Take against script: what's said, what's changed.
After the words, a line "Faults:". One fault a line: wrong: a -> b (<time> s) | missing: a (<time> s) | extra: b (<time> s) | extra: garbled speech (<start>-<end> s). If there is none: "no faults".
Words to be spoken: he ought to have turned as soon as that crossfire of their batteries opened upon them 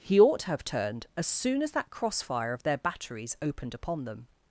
he ought to have turned as soon as that crossfire of their batteries opened upon them
Faults:
no faults